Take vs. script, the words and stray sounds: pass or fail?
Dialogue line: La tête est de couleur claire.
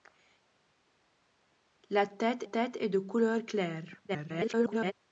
fail